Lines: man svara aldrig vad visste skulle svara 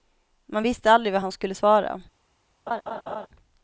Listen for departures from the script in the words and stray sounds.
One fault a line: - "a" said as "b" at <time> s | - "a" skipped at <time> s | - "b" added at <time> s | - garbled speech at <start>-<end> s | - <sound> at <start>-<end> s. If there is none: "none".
- "svara" said as "visste" at 0.6 s
- "visste" said as "han" at 1.2 s
- laugh at 2.7-3.3 s